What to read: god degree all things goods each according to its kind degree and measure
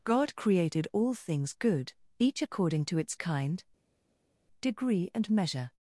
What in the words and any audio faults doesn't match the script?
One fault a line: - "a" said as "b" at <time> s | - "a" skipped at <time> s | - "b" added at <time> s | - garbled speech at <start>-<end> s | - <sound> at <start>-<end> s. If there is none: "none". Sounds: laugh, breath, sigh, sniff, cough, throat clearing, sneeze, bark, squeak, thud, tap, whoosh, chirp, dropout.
- "degree" said as "created" at 0.3 s
- "goods" said as "good" at 1.5 s